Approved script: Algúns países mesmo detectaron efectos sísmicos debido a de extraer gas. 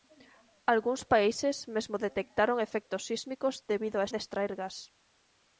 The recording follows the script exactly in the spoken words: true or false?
true